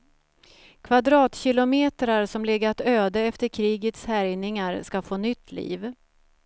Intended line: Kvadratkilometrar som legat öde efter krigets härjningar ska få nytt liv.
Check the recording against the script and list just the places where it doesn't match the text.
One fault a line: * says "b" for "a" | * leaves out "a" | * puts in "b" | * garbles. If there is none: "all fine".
all fine